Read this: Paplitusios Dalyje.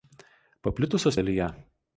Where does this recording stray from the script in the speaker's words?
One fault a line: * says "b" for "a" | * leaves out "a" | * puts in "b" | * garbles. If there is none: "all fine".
all fine